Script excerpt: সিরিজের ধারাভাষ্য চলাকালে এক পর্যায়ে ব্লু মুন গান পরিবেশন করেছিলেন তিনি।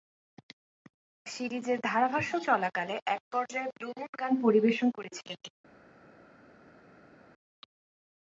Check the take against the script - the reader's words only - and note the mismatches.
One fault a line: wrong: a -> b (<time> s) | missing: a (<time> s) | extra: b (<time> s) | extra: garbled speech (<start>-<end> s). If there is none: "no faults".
no faults